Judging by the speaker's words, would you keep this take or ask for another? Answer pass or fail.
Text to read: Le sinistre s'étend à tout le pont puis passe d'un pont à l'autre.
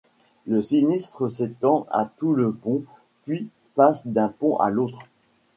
pass